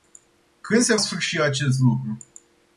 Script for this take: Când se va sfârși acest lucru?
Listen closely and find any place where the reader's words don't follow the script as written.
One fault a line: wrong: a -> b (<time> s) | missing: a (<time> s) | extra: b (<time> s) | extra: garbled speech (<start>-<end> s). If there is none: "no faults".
missing: va (1.0 s)